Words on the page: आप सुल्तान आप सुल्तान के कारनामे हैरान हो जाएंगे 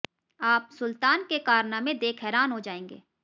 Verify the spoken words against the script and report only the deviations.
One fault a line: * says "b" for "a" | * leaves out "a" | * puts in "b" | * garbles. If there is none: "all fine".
* leaves out "आप सुल्तान"
* puts in "देख"